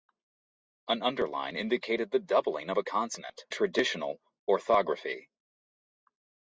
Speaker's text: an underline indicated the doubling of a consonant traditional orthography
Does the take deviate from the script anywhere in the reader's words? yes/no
no